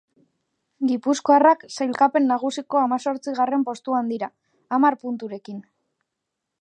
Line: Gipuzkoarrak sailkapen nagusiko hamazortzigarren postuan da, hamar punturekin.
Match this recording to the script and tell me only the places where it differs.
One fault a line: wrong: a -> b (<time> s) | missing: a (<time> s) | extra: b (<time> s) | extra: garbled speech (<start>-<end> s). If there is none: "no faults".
wrong: da -> dira (4.1 s)